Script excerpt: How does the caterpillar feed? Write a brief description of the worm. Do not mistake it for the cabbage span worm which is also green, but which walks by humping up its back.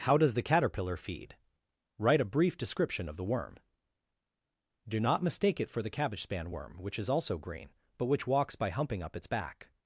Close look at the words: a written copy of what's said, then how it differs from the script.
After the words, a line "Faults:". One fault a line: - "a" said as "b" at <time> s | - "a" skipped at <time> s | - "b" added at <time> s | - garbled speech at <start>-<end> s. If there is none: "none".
How does the caterpillar feed? Write a brief description of the worm. Do not mistake it for the cabbage span worm which is also green, but which walks by humping up its back.
Faults:
none